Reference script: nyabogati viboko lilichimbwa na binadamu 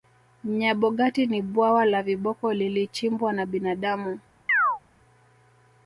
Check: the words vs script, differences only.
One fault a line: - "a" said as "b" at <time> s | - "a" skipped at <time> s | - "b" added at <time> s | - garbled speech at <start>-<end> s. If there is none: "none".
- "ni bwawa la" added at 1.3 s